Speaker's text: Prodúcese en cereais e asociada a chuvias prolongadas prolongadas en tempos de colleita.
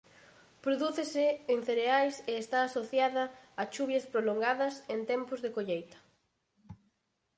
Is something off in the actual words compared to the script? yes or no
yes